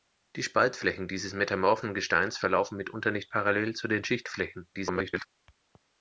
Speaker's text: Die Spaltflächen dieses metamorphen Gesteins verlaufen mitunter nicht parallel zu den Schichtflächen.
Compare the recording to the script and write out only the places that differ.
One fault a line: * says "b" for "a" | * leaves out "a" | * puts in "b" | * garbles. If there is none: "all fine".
* garbles